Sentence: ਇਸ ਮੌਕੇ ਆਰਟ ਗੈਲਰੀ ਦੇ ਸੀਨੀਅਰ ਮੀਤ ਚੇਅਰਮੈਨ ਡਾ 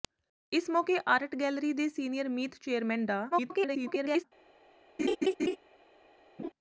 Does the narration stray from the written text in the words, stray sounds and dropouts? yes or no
yes